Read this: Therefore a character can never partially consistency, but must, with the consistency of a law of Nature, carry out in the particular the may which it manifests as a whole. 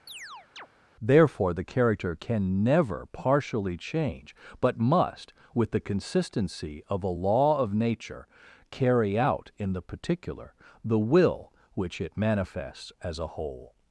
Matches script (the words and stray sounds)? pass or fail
fail